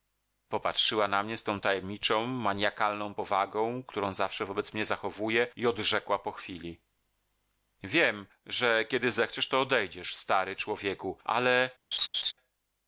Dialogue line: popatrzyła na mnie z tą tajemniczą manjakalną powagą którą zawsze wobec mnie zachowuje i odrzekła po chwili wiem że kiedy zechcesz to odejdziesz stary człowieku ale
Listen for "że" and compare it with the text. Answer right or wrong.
right